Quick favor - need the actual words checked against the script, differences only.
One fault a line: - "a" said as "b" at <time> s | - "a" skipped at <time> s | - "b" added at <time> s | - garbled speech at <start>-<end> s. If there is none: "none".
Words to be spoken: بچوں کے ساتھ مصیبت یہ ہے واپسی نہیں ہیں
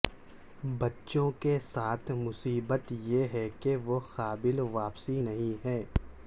- "کہ وہ قابل" added at 3.6 s